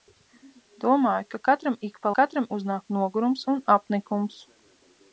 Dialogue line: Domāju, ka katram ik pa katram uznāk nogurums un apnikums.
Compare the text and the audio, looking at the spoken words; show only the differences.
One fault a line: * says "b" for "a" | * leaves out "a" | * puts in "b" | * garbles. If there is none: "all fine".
all fine